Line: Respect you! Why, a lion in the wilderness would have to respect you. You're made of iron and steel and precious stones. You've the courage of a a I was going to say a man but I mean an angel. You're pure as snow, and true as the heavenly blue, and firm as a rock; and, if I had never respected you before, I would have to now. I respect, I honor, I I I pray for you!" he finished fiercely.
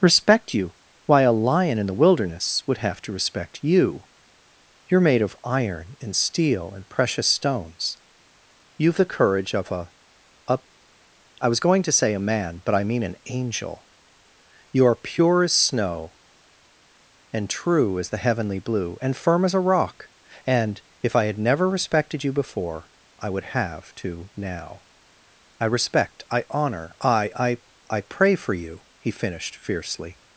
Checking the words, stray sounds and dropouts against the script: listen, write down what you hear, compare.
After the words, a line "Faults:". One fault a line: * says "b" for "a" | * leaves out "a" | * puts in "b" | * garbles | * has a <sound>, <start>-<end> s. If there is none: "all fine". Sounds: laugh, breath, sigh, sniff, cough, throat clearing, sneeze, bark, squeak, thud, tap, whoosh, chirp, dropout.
Respect you! Why, a lion in the wilderness would have to respect you. You're made of iron and steel and precious stones. You've the courage of a a I was going to say a man but I mean an angel. You're pure as snow, and true as the heavenly blue, and firm as a rock; and, if I had never respected you before, I would have to now. I respect, I honor, I I I pray for you!" he finished fiercely.
Faults:
all fine